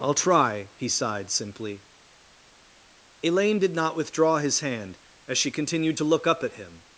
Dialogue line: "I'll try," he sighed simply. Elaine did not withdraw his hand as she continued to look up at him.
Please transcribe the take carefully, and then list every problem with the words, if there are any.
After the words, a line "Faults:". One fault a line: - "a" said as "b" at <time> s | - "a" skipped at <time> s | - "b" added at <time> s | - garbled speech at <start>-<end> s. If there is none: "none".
"I'll try," he sighed simply. Elaine did not withdraw his hand as she continued to look up at him.
Faults:
none